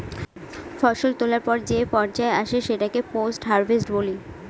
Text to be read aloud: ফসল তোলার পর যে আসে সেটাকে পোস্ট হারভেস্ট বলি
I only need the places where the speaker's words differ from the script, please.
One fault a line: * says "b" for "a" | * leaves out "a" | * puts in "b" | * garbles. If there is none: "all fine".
* puts in "পর্যায়"